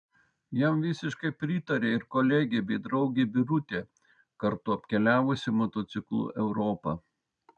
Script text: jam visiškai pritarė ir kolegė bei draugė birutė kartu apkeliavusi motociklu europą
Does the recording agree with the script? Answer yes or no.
yes